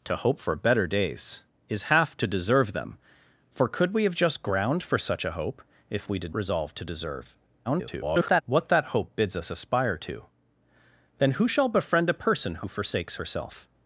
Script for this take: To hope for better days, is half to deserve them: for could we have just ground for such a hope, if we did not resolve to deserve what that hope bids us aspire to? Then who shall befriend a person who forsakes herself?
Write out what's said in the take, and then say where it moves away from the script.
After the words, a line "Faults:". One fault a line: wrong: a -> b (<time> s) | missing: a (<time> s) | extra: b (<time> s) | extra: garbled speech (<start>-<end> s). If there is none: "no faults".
To hope for better days, is half to deserve them: for could we have just ground for such a hope, if we did resolve to deserve [garbled] what that hope bids us aspire to? Then who shall befriend a person who forsakes herself?
Faults:
missing: not (6.3 s)
extra: garbled speech (7.6-8.4 s)